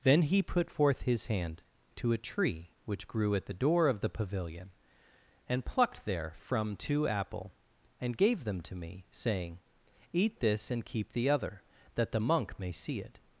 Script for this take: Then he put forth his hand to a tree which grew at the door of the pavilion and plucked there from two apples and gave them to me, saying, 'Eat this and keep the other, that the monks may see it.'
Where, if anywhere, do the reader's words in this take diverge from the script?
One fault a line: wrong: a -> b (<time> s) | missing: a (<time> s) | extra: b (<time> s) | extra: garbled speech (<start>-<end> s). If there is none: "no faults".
wrong: apples -> apple (7.1 s)
wrong: monks -> monk (12.2 s)